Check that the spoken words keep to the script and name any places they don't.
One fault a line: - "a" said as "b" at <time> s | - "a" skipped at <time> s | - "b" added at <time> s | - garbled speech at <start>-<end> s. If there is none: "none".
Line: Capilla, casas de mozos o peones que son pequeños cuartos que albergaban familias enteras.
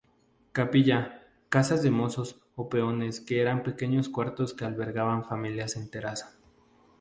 - "son" said as "eran" at 3.4 s